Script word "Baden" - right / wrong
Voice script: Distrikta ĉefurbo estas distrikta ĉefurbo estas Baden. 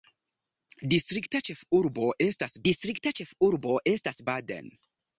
right